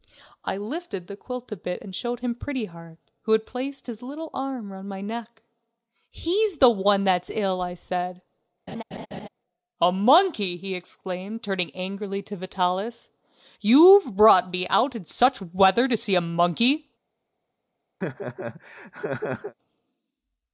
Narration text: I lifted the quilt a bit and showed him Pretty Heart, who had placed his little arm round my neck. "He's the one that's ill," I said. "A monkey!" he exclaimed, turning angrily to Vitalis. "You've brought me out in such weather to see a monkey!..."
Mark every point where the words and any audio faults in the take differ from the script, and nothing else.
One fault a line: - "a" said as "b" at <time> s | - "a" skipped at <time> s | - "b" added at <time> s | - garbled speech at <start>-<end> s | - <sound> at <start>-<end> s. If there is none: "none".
- laugh at 8.7-9.3 s
- laugh at 18.0-19.5 s